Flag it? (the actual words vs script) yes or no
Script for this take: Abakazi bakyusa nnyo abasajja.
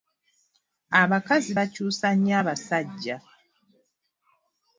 no